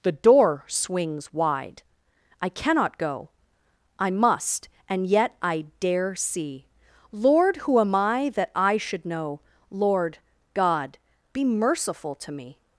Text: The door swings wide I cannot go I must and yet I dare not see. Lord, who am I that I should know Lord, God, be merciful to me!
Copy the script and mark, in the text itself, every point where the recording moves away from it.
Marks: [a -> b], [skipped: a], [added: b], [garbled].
The door swings wide I cannot go I must and yet I dare [skipped: not] see. Lord, who am I that I should know Lord, God, be merciful to me!